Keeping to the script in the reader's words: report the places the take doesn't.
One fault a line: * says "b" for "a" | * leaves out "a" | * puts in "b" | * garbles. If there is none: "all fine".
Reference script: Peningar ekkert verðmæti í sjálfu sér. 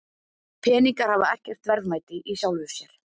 * puts in "hafa"